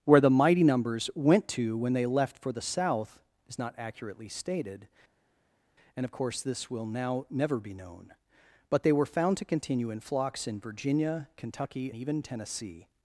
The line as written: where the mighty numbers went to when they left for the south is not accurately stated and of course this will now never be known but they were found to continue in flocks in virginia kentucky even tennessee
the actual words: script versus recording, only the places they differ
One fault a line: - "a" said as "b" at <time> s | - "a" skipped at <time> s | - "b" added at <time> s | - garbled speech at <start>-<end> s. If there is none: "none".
none